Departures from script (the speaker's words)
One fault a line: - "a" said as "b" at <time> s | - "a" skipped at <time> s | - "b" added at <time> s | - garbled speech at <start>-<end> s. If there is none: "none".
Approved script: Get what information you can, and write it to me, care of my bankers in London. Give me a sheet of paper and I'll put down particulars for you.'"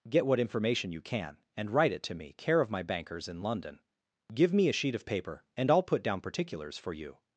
none